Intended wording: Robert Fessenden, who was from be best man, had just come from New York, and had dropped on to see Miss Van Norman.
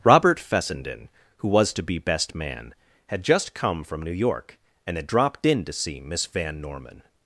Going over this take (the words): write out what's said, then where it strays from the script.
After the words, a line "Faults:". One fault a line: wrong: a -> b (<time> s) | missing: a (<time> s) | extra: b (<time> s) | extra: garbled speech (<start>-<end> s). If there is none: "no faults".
Robert Fessenden, who was to be best man, had just come from New York, and had dropped in to see Miss Van Norman.
Faults:
wrong: from -> to (1.7 s)
wrong: on -> in (5.5 s)